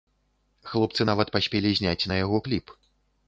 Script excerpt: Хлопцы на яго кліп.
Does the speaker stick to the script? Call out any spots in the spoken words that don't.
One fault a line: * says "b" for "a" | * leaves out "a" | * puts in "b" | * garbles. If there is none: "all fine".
* puts in "нават паспелі зняць"